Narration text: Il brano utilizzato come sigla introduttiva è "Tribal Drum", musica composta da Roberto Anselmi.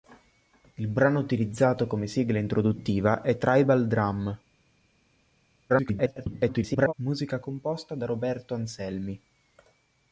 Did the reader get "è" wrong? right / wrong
right